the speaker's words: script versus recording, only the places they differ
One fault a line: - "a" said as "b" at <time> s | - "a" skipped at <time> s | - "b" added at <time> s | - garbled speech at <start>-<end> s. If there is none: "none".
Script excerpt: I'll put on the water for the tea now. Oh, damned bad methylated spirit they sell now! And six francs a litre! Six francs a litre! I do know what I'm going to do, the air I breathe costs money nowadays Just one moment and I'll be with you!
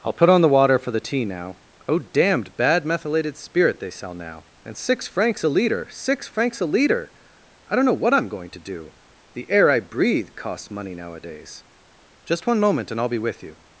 - "do" said as "don't" at 7.8 s